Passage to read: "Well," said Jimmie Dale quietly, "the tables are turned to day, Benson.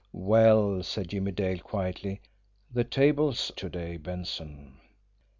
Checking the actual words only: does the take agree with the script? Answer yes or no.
no